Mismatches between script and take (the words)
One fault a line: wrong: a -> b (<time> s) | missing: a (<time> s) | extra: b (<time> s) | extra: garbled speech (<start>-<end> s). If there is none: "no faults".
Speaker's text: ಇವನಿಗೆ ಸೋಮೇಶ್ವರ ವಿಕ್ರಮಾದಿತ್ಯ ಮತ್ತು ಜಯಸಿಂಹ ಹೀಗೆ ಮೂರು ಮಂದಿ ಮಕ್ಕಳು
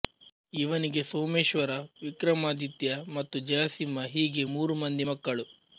no faults